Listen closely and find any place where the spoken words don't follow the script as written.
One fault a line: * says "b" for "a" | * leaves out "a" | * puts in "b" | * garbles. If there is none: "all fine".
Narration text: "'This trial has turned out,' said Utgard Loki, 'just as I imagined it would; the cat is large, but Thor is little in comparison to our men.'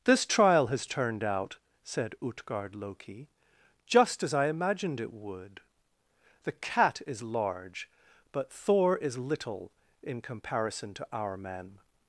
all fine